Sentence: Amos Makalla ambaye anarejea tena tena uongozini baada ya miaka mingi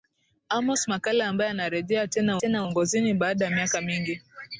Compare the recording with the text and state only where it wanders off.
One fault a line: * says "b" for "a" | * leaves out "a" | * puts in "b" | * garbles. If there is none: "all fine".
all fine